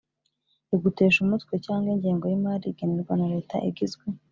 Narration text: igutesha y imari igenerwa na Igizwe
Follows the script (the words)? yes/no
no